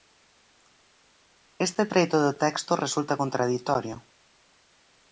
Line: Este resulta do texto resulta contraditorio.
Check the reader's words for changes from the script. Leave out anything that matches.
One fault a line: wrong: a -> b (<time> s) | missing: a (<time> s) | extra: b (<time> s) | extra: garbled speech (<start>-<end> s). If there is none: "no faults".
wrong: resulta -> treito (1.9 s)